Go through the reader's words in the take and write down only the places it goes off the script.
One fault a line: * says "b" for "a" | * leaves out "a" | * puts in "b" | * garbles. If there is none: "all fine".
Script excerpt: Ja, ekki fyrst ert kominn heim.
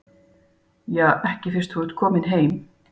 * puts in "þú"